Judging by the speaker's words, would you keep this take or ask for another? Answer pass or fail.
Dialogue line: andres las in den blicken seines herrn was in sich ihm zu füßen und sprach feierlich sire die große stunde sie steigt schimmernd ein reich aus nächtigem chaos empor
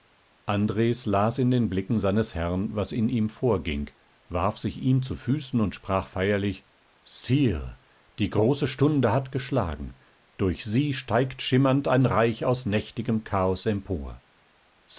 fail